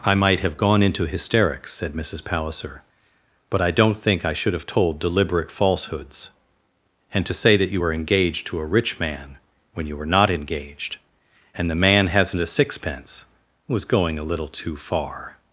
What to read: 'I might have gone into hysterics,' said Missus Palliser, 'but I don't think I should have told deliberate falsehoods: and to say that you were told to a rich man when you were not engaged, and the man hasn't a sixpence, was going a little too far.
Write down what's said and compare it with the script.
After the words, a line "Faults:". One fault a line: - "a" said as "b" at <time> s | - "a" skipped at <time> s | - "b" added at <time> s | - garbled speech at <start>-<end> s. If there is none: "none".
'I might have gone into hysterics,' said Missus Palliser, 'but I don't think I should have told deliberate falsehoods: and to say that you were engaged to a rich man when you were not engaged, and the man hasn't a sixpence, was going a little too far.
Faults:
- "told" said as "engaged" at 7.9 s